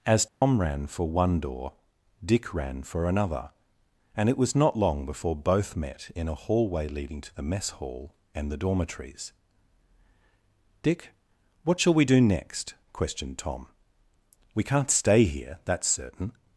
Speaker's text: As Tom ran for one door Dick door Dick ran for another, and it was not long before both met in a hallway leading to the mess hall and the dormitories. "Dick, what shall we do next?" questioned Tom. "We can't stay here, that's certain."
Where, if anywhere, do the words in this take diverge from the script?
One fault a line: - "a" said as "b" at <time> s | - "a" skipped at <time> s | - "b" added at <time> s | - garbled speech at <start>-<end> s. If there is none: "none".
- "door Dick" skipped at 2.5 s